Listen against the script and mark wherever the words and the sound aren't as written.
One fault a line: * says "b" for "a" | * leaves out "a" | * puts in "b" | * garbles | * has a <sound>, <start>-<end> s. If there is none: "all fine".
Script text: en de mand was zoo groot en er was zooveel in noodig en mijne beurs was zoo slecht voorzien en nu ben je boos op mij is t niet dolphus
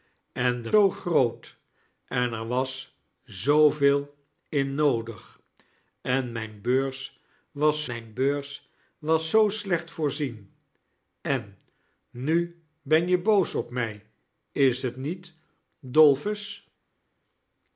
* leaves out "mand was"
* puts in "mijne beurs was"